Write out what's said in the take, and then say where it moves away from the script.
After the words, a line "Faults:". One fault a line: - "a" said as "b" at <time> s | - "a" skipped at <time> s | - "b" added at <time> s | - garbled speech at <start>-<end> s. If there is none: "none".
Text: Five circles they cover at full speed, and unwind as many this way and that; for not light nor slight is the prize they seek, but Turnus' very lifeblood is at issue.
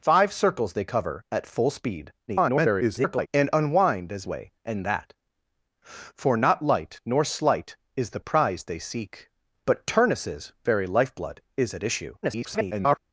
Five circles they cover at full speed, [garbled] and unwind as way and that; for not light nor slight is the prize they seek, but Turnus' very lifeblood is at issue. [garbled]
Faults:
- garbled speech at 2.3-3.3 s
- "many this" skipped at 4.3 s
- garbled speech at 12.2-13.0 s